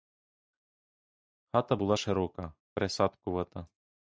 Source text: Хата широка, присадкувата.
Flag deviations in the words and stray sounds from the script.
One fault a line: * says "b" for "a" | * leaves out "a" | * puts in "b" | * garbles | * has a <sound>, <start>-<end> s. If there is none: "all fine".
* puts in "була"